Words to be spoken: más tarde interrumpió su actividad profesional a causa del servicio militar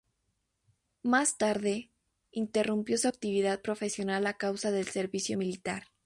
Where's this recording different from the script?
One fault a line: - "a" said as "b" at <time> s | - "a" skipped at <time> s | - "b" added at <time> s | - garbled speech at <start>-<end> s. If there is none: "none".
none